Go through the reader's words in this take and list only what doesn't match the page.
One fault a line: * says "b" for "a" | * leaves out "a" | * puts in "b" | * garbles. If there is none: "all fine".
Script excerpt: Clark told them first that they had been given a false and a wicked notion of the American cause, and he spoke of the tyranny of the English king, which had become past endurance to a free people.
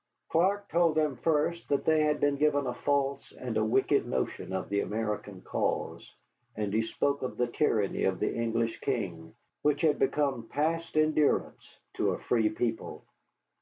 all fine